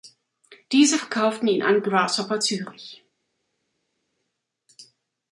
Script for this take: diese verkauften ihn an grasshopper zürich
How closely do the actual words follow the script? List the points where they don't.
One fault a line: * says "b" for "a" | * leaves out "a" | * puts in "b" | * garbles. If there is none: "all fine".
all fine